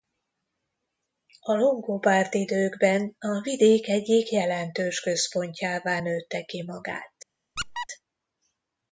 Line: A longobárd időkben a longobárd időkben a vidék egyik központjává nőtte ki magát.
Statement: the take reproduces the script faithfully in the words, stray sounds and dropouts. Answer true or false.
false